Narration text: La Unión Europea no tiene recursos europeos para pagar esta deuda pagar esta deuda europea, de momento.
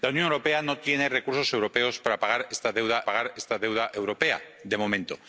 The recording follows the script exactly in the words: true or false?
true